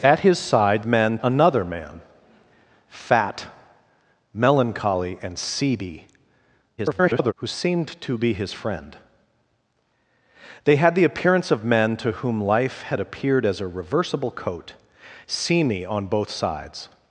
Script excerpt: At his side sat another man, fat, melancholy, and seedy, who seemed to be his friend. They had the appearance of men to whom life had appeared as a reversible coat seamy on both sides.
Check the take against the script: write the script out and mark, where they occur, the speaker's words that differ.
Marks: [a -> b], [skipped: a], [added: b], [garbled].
At his side [sat -> men] another man, fat, melancholy, and seedy, [garbled] who seemed to be his friend. They had the appearance of men to whom life had appeared as a reversible coat seamy on both sides.